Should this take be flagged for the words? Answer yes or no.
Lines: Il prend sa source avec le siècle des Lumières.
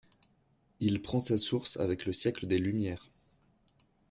no